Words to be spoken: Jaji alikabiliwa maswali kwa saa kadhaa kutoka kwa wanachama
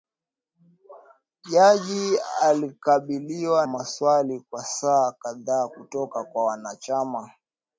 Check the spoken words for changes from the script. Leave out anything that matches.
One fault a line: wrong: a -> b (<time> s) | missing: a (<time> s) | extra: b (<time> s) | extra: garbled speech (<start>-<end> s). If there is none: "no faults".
no faults